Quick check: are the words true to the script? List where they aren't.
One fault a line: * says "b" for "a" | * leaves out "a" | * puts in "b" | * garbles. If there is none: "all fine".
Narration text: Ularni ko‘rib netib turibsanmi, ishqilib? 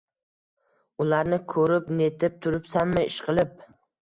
all fine